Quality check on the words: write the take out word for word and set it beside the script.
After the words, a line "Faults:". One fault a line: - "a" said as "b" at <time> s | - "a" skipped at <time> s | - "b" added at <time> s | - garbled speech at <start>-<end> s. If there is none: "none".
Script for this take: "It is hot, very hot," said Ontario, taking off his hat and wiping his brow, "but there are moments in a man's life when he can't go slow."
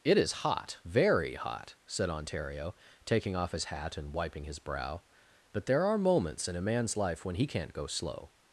"It is hot, very hot," said Ontario, taking off his hat and wiping his brow, "but there are moments in a man's life when he can't go slow."
Faults:
none